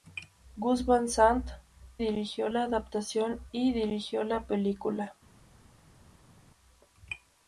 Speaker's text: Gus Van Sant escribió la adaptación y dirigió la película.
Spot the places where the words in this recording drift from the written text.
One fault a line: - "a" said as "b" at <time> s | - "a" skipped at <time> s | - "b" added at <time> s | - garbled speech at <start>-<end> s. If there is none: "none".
- "escribió" said as "dirigió" at 2.0 s